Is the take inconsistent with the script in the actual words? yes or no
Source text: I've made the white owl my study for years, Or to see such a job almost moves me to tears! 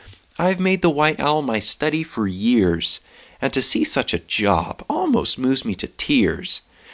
yes